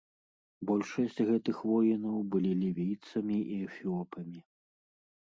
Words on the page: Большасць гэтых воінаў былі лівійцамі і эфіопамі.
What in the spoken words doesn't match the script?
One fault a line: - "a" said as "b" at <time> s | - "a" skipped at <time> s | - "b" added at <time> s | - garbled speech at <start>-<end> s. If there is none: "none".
none